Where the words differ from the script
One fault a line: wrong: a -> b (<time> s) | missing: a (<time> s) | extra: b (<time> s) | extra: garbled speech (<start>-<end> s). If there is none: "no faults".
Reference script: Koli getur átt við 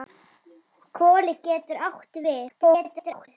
extra: garbled speech (2.5-3.3 s)